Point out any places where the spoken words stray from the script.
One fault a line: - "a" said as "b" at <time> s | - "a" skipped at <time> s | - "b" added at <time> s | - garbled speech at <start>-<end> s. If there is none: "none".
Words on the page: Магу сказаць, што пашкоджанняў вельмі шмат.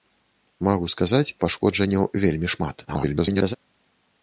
- "што" skipped at 1.3 s
- garbled speech at 2.8-3.6 s